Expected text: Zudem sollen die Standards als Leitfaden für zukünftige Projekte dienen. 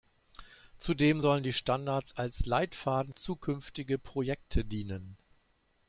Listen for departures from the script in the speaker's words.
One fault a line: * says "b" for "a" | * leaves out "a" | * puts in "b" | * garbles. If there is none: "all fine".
* leaves out "für"